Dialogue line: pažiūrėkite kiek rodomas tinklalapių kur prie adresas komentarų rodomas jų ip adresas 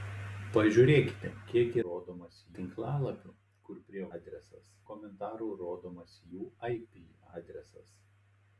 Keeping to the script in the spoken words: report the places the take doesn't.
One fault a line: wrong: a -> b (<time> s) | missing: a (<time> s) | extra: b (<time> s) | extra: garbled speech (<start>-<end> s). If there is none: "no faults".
no faults